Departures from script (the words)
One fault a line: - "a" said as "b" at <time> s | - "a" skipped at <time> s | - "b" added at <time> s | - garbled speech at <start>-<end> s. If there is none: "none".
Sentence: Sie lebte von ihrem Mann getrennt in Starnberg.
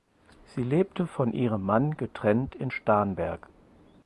none